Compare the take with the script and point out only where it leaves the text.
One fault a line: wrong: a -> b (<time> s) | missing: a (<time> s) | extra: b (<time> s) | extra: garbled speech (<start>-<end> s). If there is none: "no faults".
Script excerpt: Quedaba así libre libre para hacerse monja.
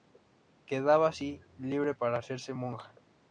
missing: libre (1.9 s)